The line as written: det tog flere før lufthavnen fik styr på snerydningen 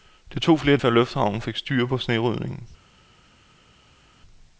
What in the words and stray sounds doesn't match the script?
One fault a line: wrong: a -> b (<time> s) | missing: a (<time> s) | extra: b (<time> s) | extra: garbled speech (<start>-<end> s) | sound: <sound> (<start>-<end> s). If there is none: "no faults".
no faults